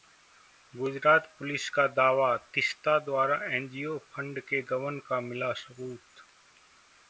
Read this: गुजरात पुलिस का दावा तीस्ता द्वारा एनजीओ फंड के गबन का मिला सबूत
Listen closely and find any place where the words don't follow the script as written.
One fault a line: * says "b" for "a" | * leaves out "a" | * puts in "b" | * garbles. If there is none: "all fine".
all fine